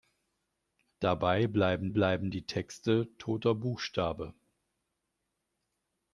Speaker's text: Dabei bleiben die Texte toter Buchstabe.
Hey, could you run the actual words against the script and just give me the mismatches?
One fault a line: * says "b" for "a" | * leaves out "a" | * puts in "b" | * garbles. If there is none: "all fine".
* puts in "bleiben"